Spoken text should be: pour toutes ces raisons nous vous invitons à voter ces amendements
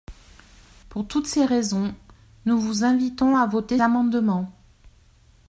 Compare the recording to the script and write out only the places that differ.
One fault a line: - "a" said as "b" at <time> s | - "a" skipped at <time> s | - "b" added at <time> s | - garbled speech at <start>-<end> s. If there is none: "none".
- "ces" skipped at 3.8 s